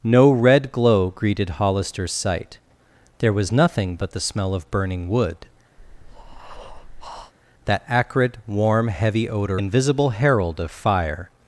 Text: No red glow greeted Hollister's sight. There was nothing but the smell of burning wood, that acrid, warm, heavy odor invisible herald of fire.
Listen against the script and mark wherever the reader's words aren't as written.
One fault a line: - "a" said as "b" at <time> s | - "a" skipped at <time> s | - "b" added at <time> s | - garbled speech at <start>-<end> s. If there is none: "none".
none